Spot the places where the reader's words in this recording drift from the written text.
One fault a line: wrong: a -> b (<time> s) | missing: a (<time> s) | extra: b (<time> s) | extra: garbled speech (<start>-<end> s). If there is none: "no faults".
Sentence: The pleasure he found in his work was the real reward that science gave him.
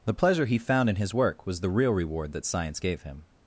no faults